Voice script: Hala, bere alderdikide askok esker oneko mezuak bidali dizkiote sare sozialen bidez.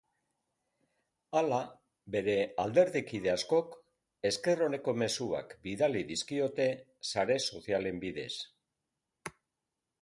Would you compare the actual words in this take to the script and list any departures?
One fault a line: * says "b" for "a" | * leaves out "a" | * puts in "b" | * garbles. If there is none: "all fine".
all fine